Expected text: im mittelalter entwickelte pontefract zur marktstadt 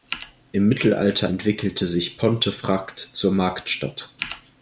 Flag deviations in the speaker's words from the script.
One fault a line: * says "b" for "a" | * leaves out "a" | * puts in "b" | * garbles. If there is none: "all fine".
* puts in "sich"